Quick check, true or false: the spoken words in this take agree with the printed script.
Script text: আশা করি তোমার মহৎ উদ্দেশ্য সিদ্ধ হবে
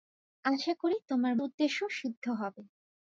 false